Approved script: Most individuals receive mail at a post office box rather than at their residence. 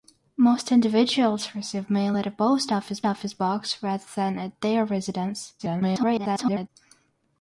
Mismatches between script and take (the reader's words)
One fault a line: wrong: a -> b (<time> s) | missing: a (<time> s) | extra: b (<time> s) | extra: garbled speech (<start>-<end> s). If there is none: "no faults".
extra: office (3.0 s)
extra: garbled speech (5.6-6.7 s)